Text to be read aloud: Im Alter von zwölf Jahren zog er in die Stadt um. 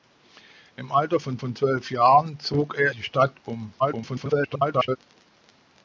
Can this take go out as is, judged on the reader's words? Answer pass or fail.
fail